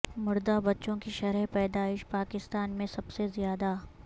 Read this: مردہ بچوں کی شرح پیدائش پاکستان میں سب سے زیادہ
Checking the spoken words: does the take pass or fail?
pass